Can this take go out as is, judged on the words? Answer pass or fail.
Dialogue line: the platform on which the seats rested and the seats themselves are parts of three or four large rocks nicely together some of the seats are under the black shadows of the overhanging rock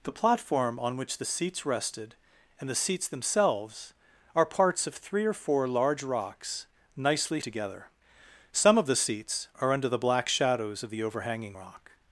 pass